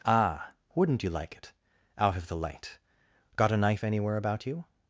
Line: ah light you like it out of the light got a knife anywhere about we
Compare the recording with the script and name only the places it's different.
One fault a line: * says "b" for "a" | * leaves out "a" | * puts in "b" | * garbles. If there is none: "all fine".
* says "wouldn't" for "light"
* says "you" for "we"